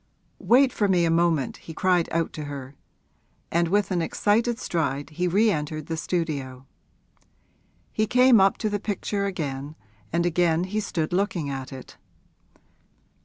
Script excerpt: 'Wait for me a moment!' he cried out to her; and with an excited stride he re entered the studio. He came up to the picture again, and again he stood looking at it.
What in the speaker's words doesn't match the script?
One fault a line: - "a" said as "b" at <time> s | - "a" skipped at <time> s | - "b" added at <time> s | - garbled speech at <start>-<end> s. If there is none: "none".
none